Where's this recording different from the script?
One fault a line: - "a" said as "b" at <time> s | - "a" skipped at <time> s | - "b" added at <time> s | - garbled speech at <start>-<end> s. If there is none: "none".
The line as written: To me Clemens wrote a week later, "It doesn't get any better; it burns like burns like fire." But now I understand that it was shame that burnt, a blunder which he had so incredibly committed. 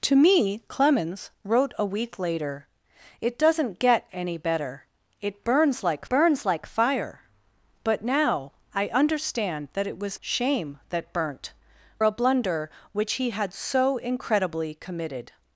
none